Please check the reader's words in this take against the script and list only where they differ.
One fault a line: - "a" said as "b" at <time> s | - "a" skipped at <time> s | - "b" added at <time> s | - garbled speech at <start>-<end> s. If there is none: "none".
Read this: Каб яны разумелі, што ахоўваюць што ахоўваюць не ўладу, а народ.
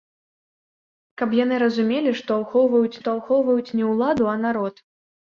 none